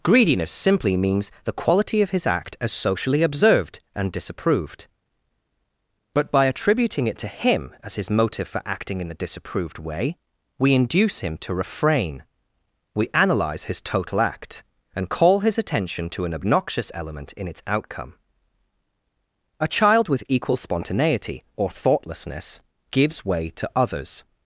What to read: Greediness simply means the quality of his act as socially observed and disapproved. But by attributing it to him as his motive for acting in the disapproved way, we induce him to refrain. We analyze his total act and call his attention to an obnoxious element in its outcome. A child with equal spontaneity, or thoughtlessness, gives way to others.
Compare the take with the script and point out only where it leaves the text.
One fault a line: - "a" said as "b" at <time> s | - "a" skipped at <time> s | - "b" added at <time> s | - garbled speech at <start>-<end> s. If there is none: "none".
- "the" said as "a" at 9.1 s